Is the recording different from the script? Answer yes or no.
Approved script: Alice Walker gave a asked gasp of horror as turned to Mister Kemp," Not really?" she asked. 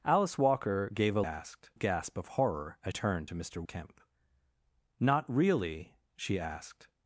no